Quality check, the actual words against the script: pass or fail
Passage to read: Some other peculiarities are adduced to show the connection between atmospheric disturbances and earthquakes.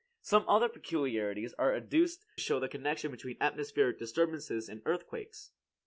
fail